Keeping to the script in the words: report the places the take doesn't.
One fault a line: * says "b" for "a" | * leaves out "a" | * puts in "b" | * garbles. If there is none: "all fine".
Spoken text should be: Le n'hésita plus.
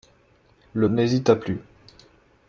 all fine